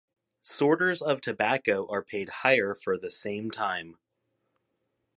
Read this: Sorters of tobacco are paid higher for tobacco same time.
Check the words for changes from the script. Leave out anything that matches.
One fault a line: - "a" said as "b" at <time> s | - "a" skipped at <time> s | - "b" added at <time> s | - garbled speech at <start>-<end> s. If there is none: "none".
- "tobacco" said as "the" at 3.0 s